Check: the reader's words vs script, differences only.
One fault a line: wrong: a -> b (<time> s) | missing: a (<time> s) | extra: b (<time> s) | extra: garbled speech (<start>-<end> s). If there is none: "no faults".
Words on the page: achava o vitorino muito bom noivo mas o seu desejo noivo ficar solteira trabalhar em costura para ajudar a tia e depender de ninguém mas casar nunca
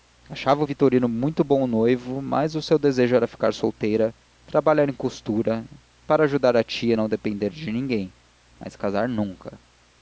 wrong: noivo -> era (3.2 s)
extra: não (6.9 s)